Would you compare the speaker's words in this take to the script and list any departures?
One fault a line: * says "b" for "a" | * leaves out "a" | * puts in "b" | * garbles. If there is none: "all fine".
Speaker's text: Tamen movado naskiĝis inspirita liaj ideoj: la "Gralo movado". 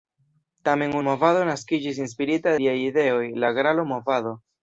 all fine